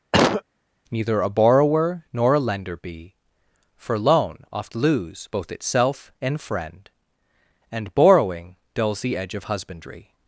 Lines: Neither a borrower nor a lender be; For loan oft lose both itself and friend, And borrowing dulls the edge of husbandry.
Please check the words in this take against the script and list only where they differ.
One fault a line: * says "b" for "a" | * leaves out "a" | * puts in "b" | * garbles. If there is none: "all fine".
all fine